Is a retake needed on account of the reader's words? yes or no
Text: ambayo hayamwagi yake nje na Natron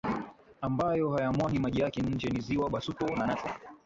yes